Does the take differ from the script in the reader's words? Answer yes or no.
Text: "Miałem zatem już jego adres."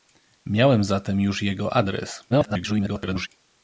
yes